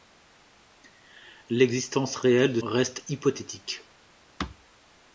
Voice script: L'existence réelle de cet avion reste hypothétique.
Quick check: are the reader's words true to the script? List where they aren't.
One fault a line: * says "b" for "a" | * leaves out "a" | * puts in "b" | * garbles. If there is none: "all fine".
* leaves out "cet avion"